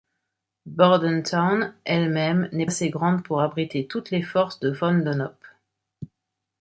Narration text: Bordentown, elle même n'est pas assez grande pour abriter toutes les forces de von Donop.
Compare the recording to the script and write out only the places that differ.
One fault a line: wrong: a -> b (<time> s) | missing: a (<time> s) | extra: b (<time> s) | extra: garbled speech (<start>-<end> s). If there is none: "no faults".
missing: pas (2.6 s)